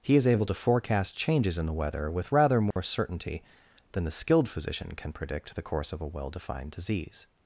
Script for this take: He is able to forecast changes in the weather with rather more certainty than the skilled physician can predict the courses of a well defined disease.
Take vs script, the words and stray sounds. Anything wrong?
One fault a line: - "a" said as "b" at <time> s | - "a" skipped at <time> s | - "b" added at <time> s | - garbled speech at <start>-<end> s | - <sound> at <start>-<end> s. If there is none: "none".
- dropout at 2.7-2.8 s
- "courses" said as "course" at 5.6 s